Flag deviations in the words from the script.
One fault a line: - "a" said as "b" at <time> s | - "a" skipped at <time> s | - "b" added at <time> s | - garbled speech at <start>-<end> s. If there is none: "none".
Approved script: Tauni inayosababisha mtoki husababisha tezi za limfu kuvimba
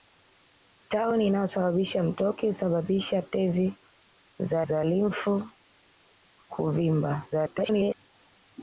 - "za" added at 4.7 s
- garbled speech at 7.3-7.9 s